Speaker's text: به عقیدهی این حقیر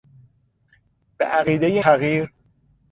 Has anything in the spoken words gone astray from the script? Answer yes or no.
yes